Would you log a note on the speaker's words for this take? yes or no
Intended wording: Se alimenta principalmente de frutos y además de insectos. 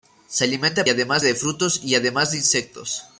yes